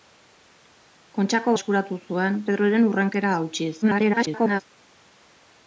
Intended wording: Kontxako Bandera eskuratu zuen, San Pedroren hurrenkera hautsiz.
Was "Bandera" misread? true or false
true